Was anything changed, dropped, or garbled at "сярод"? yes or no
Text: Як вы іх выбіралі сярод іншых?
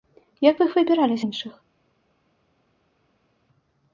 yes